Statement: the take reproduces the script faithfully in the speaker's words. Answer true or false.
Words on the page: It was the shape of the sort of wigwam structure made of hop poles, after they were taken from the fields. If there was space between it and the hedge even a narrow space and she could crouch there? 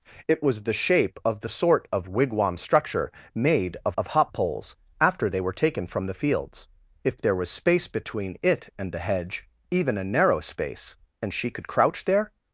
false